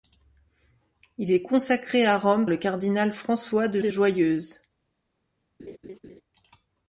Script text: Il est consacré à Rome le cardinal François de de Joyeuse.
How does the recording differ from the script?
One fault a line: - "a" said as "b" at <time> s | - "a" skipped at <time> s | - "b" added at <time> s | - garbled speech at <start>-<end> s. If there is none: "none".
none